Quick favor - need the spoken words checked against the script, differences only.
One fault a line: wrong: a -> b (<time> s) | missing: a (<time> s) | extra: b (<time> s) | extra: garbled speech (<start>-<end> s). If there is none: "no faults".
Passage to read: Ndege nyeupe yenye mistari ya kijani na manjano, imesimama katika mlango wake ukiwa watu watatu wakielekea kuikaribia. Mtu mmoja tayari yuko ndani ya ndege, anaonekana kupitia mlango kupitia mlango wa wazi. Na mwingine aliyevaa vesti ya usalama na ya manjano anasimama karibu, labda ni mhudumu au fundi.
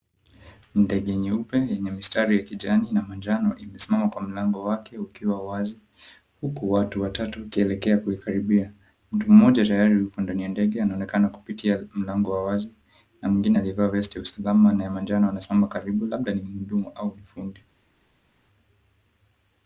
wrong: katika -> kwa (4.1 s)
extra: wazi Huku (5.5 s)
missing: kupitia mlango (12.3 s)